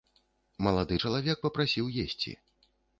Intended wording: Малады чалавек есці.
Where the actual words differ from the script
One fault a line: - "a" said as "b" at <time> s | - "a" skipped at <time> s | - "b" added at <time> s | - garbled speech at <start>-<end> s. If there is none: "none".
- "папрасіў" added at 1.5 s